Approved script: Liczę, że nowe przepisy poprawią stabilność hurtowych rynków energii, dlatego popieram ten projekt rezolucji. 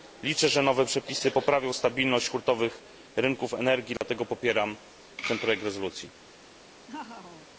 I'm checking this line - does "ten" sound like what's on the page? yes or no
yes